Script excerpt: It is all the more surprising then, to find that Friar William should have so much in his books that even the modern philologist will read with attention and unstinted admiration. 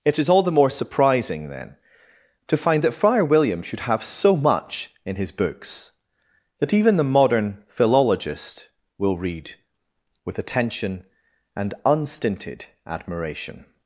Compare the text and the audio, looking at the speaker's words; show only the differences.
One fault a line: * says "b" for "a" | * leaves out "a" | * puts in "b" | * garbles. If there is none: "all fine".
all fine